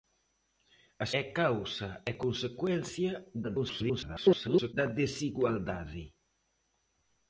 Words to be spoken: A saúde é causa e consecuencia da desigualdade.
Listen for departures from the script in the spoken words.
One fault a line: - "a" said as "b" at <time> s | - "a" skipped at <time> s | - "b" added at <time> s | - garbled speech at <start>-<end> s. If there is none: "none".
- "saúde" skipped at 1.1 s
- garbled speech at 3.4-4.7 s